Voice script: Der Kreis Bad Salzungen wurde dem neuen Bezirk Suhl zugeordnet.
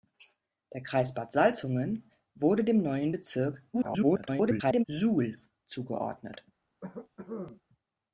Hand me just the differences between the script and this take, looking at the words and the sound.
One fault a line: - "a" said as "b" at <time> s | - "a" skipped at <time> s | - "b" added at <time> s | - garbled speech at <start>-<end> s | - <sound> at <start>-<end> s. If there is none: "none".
- garbled speech at 3.7-4.8 s
- cough at 6.8-7.6 s